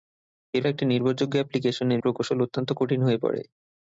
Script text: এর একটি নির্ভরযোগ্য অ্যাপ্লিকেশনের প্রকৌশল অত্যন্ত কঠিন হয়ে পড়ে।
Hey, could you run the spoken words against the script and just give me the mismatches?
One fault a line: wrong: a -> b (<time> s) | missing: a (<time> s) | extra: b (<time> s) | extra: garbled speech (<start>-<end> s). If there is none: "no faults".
no faults